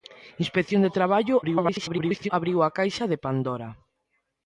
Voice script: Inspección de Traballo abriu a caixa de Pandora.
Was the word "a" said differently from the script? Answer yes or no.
no